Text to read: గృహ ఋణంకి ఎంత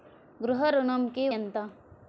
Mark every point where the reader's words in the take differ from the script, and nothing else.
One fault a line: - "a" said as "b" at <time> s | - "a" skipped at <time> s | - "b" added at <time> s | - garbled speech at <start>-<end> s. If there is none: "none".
none